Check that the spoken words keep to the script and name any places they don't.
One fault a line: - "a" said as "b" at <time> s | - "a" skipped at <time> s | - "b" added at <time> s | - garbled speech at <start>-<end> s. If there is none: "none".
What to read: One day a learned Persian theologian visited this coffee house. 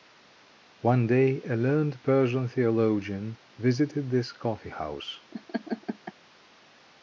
none